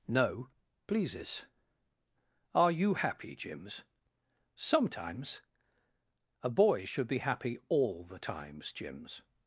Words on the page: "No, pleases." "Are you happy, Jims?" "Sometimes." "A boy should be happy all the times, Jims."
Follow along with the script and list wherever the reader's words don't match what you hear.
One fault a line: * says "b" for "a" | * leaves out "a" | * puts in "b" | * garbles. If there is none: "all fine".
all fine